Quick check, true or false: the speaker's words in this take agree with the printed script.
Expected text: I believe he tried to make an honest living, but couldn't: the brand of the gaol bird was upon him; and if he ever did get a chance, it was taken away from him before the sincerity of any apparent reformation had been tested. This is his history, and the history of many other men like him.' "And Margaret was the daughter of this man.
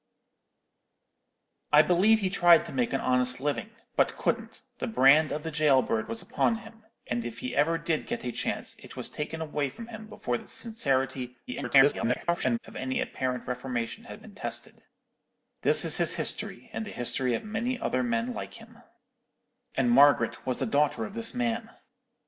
false